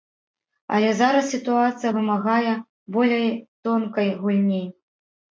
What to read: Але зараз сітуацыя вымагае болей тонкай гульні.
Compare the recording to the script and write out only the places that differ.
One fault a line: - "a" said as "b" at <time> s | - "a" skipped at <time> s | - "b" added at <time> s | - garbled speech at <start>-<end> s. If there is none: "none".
none